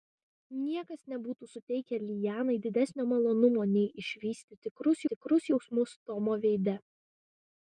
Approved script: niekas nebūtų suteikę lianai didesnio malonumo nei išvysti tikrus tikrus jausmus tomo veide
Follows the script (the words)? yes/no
yes